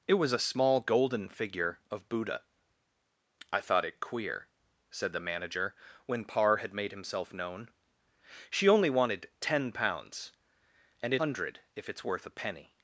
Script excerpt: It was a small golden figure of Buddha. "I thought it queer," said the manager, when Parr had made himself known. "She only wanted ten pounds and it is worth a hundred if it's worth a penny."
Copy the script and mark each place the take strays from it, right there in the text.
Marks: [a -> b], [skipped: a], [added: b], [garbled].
It was a small golden figure of Buddha. "I thought it queer," said the manager, when Parr had made himself known. "She only wanted ten pounds and it [skipped: is worth a] hundred if it's worth a penny."